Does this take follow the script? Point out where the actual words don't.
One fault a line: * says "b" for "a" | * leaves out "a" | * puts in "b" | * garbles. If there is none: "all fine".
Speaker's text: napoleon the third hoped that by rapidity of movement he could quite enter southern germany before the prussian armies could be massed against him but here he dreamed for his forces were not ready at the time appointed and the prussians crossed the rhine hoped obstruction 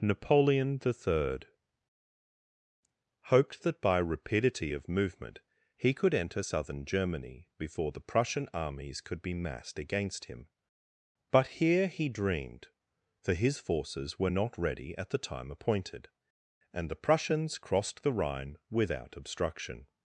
* leaves out "quite"
* says "without" for "hoped"